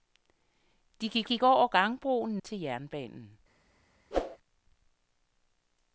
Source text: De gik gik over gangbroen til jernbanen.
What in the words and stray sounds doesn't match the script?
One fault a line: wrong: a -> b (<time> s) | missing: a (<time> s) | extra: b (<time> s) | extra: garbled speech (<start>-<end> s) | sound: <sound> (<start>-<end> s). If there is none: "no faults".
sound: whoosh (4.1-4.4 s)